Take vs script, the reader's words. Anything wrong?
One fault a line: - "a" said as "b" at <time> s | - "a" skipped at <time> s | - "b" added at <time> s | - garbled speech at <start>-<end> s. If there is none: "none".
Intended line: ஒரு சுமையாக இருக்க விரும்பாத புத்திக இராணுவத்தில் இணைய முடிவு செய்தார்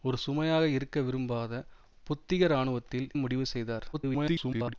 - "இணைய" skipped at 3.1 s
- garbled speech at 3.9-4.7 s